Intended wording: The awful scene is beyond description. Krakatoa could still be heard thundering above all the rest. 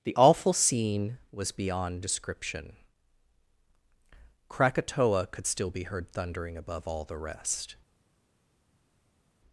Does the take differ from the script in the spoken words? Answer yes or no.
yes